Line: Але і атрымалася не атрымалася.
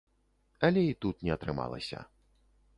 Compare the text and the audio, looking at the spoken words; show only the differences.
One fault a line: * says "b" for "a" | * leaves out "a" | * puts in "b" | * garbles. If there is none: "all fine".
* says "тут" for "атрымалася"